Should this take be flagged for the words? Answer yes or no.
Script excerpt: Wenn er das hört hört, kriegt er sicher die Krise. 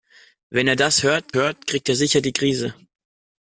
no